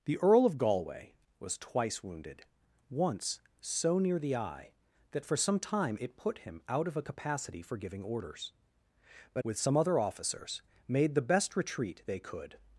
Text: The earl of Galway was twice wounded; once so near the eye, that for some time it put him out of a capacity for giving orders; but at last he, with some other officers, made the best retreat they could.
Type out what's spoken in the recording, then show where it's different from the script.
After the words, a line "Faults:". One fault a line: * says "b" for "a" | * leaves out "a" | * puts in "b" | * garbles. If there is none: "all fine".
The earl of Galway was twice wounded; once so near the eye, that for some time it put him out of a capacity for giving orders; but with some other officers, made the best retreat they could.
Faults:
* leaves out "at last he"